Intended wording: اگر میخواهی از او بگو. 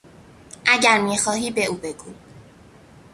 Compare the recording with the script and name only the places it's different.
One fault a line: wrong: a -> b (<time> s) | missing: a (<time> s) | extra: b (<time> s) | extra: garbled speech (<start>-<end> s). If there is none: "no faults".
wrong: از -> به (1.5 s)